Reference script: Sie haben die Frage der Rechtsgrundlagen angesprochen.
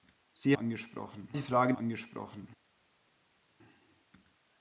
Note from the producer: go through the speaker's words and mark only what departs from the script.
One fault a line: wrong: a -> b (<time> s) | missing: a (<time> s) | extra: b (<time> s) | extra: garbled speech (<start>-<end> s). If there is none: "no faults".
wrong: haben -> angesprochen (0.5 s)
missing: der Rechtsgrundlagen (1.7 s)